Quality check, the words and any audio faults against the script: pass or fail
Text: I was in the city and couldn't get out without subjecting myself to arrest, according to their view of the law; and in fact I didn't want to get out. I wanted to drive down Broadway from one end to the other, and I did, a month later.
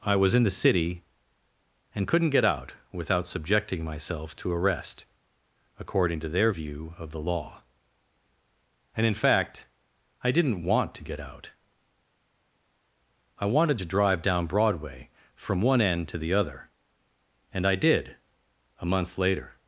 pass